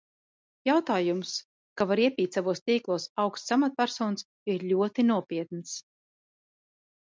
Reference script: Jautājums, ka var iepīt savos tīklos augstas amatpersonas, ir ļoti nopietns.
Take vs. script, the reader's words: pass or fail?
pass